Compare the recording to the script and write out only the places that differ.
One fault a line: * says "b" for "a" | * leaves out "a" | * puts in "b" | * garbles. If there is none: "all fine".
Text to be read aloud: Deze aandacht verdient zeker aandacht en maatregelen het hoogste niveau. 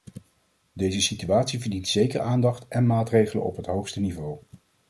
* says "situatie" for "aandacht"
* puts in "op"